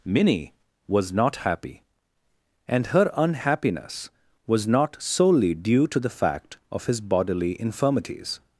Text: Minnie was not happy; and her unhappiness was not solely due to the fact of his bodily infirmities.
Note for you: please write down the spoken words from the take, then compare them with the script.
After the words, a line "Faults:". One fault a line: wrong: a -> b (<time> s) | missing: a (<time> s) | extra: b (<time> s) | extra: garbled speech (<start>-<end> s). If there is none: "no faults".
Minnie was not happy; and her unhappiness was not solely due to the fact of his bodily infirmities.
Faults:
no faults